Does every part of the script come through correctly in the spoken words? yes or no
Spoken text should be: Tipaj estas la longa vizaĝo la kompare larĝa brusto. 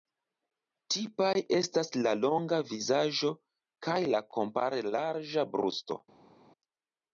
no